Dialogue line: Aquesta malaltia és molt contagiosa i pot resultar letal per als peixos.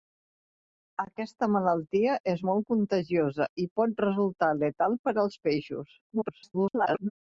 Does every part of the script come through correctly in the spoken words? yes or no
no